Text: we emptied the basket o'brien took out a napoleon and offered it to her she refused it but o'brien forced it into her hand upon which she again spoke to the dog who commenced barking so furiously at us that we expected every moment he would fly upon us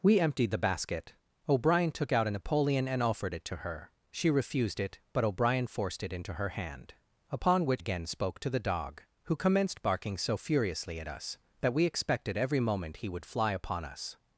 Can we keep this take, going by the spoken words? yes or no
no